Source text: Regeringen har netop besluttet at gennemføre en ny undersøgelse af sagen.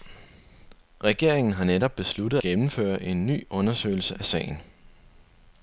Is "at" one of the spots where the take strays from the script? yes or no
yes